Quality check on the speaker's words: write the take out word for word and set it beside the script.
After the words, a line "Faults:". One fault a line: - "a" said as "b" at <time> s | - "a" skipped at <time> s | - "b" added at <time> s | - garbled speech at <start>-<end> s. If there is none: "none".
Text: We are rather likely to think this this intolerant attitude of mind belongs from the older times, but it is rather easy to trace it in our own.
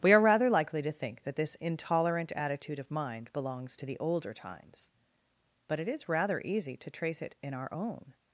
We are rather likely to think that this intolerant attitude of mind belongs to the older times, but it is rather easy to trace it in our own.
Faults:
- "this" said as "that" at 1.2 s
- "from" said as "to" at 3.8 s